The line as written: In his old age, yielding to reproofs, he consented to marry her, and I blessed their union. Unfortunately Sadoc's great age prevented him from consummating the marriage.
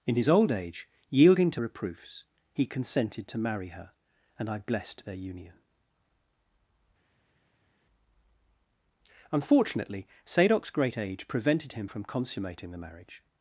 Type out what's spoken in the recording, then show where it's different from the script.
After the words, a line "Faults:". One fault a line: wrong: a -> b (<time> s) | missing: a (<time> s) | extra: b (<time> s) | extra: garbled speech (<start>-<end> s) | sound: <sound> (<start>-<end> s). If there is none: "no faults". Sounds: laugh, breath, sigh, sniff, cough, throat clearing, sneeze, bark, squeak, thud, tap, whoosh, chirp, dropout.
In his old age, yielding to reproofs, he consented to marry her, and I blessed their union. Unfortunately Sadoc's great age prevented him from consummating the marriage.
Faults:
no faults